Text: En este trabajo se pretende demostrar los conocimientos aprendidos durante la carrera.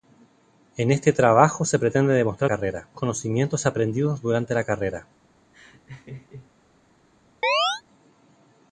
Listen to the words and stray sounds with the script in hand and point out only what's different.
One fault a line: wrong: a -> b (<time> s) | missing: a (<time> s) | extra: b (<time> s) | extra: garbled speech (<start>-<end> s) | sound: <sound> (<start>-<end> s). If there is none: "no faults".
wrong: los -> carrera (2.5 s)
sound: laugh (5.5-6.5 s)
sound: chirp (7.4-7.8 s)